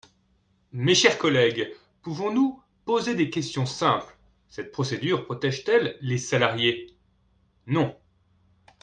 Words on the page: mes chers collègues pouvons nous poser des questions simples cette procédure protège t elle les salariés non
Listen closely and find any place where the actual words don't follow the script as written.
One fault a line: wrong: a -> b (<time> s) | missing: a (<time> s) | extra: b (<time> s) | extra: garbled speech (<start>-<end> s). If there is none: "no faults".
no faults